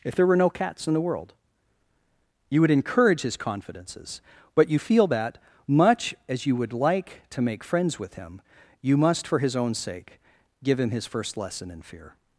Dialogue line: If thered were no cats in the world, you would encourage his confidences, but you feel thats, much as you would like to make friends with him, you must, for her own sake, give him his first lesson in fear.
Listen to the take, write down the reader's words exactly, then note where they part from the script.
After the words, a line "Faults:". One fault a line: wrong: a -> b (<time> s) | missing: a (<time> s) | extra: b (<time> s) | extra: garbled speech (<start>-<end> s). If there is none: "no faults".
If there were no cats in the world, you would encourage his confidences, but you feel that, much as you would like to make friends with him, you must, for his own sake, give him his first lesson in fear.
Faults:
wrong: thered -> there (0.1 s)
wrong: thats -> that (5.1 s)
wrong: her -> his (9.4 s)